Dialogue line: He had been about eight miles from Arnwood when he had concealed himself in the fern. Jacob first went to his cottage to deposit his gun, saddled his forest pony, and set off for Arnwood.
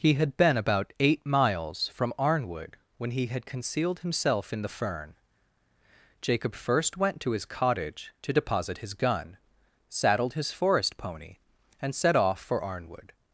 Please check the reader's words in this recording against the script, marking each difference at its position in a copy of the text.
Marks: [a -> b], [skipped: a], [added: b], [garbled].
He had been about eight miles from Arnwood when he had concealed himself in the fern. Jacob first went to his cottage to deposit his gun, saddled his forest pony, and set off for Arnwood.